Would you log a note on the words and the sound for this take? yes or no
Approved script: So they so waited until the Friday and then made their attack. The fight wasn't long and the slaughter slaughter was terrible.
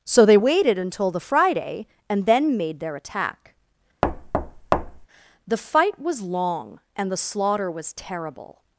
yes